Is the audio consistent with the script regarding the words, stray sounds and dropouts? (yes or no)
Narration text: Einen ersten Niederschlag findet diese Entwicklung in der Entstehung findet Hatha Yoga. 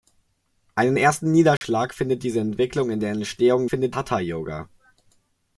no